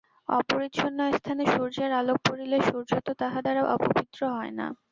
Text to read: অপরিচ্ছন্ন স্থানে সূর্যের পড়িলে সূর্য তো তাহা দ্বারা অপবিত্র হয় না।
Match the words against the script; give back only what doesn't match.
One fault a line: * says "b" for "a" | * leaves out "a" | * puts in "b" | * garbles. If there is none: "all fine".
* puts in "আলোক"